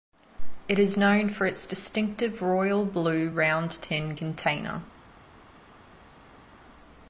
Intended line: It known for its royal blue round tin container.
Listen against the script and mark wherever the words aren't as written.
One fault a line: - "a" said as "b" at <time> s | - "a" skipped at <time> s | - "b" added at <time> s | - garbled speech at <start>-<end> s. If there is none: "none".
- "is" added at 0.8 s
- "distinctive" added at 1.7 s